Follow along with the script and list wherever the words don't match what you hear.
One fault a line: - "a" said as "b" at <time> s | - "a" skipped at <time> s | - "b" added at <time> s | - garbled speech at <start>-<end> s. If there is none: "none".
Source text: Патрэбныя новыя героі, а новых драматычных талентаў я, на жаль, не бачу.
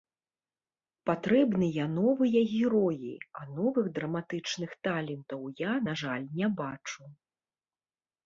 none